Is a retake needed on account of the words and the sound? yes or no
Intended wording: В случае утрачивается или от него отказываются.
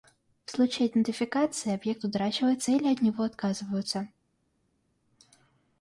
yes